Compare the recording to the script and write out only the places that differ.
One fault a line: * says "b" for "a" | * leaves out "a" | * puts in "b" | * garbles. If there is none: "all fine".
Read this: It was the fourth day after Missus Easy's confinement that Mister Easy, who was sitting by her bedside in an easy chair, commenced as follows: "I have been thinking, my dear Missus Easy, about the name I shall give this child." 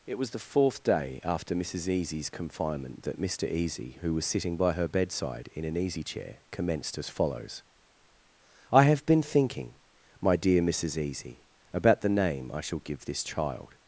all fine